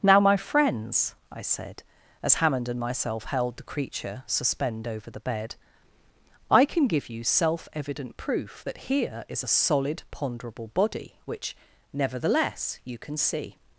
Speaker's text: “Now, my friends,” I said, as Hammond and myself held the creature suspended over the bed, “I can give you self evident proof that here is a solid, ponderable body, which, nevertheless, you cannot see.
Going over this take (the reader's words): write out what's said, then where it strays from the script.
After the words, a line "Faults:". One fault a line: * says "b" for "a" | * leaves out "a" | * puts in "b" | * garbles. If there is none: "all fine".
“Now, my friends,” I said, as Hammond and myself held the creature suspend over the bed, “I can give you self evident proof that here is a solid, ponderable body, which, nevertheless, you can see.
Faults:
* says "suspend" for "suspended"
* says "can" for "cannot"